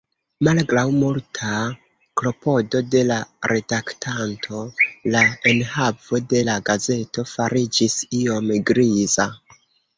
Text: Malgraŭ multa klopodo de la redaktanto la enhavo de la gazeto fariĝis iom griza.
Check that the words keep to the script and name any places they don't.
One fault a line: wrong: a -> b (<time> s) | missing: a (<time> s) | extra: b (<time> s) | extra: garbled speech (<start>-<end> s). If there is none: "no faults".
no faults